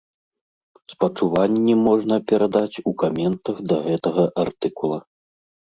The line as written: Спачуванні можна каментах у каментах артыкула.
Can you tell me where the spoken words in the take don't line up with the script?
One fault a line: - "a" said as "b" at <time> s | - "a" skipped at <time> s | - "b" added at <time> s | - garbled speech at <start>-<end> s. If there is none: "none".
- "каментах" said as "перадаць" at 2.3 s
- "да гэтага" added at 3.7 s